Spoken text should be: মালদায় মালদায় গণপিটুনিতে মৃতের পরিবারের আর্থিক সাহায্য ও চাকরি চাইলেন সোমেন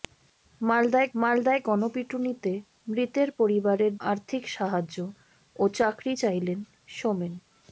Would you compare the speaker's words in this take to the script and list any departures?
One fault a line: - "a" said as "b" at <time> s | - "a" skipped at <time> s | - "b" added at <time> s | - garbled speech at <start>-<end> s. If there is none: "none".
none